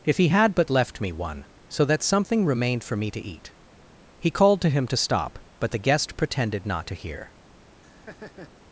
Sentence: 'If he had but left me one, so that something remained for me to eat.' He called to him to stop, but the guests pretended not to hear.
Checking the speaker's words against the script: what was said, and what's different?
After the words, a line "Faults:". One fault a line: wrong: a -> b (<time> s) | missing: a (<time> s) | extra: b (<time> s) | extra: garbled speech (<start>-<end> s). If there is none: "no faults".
'If he had but left me one, so that something remained for me to eat.' He called to him to stop, but the guest pretended not to hear.
Faults:
wrong: guests -> guest (5.8 s)